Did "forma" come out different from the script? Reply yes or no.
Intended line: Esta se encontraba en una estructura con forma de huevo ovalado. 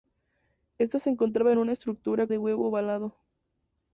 yes